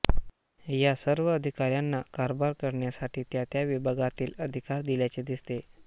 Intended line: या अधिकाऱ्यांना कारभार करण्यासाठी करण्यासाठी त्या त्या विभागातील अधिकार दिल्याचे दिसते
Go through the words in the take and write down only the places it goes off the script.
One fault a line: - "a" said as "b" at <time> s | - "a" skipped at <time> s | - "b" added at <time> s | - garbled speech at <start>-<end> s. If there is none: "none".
- "सर्व" added at 1.0 s
- "करण्यासाठी" skipped at 3.2 s